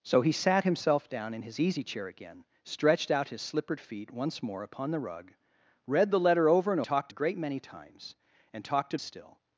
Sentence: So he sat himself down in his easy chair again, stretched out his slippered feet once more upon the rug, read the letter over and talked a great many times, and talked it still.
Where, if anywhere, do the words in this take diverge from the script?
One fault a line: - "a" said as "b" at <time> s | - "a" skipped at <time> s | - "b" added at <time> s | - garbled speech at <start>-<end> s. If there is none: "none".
none